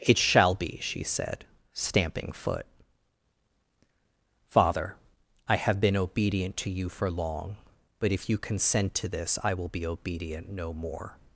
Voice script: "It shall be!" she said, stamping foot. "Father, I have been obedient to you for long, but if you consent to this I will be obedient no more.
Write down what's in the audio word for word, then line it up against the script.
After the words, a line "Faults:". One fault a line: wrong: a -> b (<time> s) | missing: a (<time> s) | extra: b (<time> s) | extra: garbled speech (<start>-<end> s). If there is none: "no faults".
"It shall be!" she said, stamping foot. "Father, I have been obedient to you for long, but if you consent to this I will be obedient no more.
Faults:
no faults